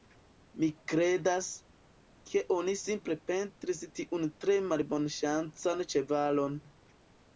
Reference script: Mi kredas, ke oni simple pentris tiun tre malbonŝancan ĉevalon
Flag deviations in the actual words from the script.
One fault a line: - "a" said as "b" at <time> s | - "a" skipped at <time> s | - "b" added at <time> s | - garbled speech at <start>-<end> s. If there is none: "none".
none